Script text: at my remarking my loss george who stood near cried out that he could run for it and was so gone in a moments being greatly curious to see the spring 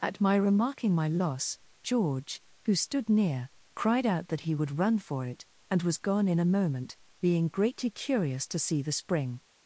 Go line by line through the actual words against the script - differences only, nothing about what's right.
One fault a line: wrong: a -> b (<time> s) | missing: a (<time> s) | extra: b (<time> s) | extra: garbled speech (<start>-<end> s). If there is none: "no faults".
wrong: could -> would (4.5 s)
missing: so (6.0 s)
wrong: moments -> moment (6.5 s)